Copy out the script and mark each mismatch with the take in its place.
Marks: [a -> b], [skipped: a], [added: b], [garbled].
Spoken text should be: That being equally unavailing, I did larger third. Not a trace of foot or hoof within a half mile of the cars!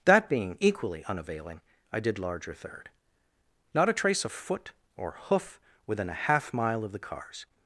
That being equally unavailing, I did larger third. Not a trace of foot or hoof within a half mile of the cars!